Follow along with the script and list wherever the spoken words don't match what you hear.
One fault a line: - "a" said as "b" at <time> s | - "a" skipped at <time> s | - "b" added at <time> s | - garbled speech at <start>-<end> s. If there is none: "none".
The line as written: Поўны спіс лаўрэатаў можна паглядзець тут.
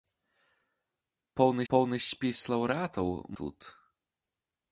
- "поўны" added at 1.7 s
- "можна паглядзець" skipped at 3.1 s